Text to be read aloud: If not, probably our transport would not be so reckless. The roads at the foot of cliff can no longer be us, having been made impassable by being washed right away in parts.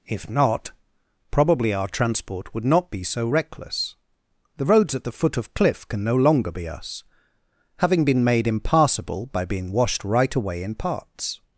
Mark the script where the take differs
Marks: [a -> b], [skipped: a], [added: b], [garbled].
If not, probably our transport would not be so reckless. The roads at the foot of cliff can no longer be us, having been made impassable by being washed right away in parts.